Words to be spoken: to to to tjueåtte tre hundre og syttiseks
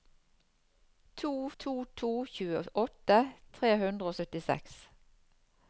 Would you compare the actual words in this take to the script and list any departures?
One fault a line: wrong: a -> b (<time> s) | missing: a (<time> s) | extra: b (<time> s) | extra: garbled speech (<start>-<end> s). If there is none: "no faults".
no faults